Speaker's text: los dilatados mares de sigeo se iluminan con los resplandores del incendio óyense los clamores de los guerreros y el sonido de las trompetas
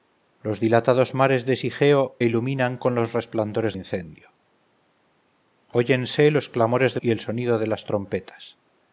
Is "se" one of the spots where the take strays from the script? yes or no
yes